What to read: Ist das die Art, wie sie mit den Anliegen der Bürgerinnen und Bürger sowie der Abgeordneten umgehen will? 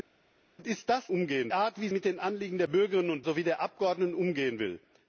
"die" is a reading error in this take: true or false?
true